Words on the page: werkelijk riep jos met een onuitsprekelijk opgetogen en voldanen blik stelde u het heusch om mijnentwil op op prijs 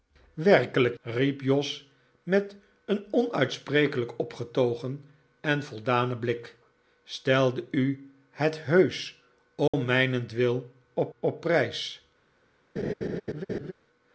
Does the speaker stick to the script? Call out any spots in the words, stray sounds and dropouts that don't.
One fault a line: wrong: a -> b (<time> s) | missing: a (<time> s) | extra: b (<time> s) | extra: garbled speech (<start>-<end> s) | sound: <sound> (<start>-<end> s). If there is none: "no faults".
sound: dropout (9.7-9.7 s)
sound: laugh (12.8-13.7 s)